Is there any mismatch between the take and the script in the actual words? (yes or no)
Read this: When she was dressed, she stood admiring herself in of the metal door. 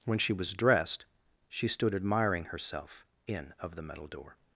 no